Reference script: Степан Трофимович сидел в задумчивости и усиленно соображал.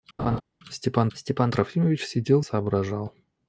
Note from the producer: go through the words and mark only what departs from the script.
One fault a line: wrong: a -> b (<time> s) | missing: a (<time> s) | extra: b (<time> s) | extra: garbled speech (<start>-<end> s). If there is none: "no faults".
extra: степан (1.1 s)
missing: задумчивости и усиленно (2.4 s)